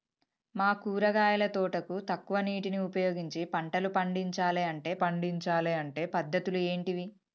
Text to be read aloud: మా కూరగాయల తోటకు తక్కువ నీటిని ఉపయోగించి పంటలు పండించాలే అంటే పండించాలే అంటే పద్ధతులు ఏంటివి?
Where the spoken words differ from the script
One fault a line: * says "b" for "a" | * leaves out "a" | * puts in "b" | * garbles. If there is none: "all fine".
all fine